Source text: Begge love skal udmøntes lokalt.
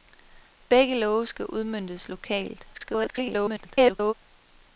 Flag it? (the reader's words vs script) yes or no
yes